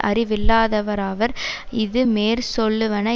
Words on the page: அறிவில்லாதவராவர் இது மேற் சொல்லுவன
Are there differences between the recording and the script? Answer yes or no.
no